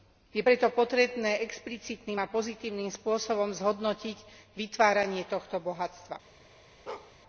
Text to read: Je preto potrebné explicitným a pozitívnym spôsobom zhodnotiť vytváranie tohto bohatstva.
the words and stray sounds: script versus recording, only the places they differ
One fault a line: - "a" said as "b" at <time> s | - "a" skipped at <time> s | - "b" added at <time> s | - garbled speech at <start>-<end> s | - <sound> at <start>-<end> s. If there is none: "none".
- bark at 6.9-7.1 s